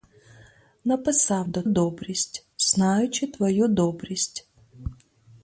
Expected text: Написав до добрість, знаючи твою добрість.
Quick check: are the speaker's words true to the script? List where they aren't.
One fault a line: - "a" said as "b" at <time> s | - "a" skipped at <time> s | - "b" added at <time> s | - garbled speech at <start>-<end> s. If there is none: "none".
none